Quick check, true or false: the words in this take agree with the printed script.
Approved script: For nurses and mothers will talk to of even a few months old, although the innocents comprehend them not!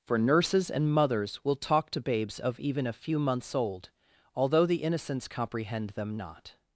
false